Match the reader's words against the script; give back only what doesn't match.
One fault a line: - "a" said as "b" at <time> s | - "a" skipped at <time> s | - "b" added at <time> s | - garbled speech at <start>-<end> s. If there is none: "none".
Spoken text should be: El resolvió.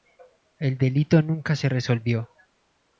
- "delito nunca se" added at 0.8 s